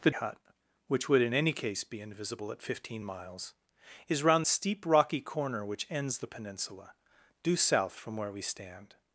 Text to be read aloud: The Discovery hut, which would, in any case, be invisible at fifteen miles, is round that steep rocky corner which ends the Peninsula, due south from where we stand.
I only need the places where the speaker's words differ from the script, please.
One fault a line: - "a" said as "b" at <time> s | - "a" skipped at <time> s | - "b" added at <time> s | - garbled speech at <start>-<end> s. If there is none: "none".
- "Discovery" skipped at 0.1 s
- "that" skipped at 4.5 s